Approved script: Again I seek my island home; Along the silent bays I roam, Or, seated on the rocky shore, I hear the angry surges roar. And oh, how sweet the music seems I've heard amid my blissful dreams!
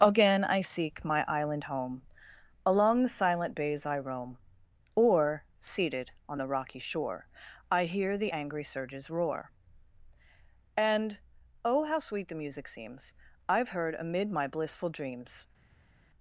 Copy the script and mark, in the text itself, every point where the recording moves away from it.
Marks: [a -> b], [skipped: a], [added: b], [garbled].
Again I seek my island home; Along the silent bays I roam, Or, seated on the rocky shore, I hear the angry surges roar. And oh, how sweet the music seems I've heard amid my blissful dreams!